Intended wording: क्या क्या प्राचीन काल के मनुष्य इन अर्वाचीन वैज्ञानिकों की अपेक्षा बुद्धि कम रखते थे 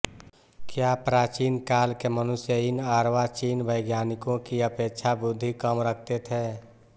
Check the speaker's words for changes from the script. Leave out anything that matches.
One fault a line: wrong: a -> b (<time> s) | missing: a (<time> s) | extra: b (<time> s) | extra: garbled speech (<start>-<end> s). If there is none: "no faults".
missing: क्या (0.9 s)